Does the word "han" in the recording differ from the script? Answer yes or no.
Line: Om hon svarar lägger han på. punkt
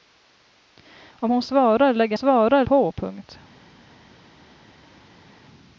yes